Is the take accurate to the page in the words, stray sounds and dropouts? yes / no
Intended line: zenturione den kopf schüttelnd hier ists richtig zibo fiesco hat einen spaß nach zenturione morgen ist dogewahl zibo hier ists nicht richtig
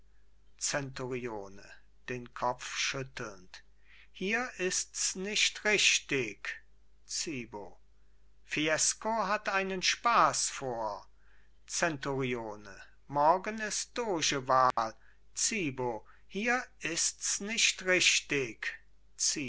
no